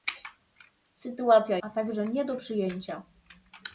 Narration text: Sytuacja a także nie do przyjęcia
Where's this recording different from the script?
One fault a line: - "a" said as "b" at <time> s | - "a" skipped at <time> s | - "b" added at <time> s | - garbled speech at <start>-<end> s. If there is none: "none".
none